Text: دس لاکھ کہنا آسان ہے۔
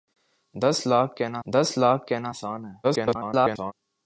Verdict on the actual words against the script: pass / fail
fail